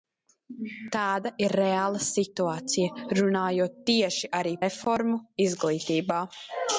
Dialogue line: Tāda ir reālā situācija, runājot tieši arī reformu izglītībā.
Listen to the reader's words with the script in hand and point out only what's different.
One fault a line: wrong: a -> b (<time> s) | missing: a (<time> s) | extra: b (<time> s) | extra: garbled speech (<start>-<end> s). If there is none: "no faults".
no faults